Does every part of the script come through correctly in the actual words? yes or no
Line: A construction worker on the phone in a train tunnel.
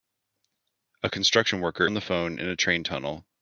yes